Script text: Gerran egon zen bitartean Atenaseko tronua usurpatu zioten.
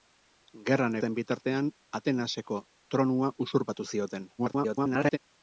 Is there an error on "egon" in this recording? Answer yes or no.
yes